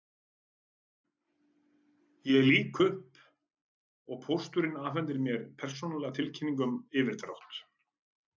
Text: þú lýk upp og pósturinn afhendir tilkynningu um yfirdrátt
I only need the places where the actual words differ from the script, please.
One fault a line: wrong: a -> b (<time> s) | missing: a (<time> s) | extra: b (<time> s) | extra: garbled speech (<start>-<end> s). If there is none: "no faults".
wrong: þú -> ég (2.3 s)
extra: mér persónulega (5.3 s)